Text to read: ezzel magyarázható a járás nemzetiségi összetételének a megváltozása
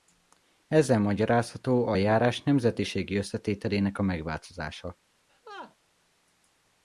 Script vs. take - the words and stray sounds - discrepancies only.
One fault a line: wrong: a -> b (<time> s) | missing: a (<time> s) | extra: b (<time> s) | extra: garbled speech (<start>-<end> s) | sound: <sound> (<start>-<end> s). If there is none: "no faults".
sound: laugh (5.3-5.8 s)